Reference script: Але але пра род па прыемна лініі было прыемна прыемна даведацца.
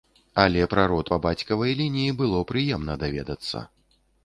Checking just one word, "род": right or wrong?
right